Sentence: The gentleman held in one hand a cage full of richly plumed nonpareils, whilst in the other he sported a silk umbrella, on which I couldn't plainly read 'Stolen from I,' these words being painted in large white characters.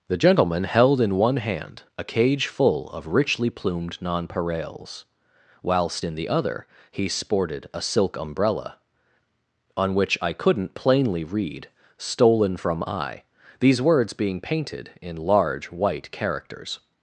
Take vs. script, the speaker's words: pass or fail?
pass